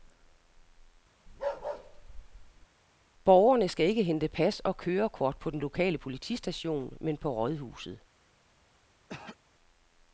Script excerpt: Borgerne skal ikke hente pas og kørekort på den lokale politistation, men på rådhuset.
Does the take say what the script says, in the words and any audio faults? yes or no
no